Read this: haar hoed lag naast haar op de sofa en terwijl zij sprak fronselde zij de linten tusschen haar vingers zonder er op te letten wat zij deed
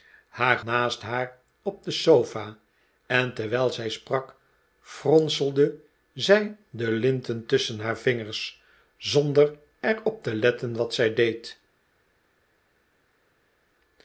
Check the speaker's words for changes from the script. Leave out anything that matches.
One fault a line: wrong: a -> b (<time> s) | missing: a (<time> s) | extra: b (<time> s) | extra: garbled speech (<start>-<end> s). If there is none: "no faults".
missing: hoed lag (0.6 s)